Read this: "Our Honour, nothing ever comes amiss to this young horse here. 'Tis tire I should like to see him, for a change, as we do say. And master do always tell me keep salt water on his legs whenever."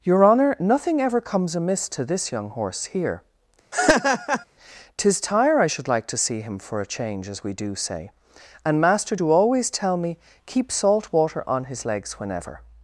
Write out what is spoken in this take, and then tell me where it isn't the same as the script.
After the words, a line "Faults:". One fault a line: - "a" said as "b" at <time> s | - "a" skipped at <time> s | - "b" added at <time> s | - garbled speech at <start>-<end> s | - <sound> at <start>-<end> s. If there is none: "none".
"Your Honour, nothing ever comes amiss to this young horse here. 'Tis tire I should like to see him, for a change, as we do say. And master do always tell me keep salt water on his legs whenever."
Faults:
- "Our" said as "Your" at 0.0 s
- laugh at 3.7-4.4 s